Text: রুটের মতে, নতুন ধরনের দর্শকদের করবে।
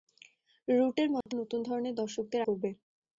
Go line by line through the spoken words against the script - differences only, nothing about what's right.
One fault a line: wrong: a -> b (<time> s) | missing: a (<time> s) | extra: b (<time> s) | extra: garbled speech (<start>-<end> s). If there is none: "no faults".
no faults